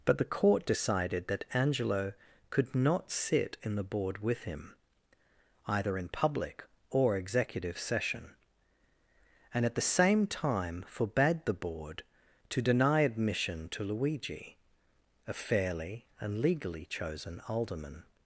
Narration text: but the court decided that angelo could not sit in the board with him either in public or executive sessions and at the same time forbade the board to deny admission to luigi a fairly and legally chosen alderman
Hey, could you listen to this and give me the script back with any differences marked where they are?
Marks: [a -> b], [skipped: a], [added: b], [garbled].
but the court decided that angelo could not sit in the board with him either in public or executive [sessions -> session] and at the same time forbade the board to deny admission to luigi a fairly and legally chosen alderman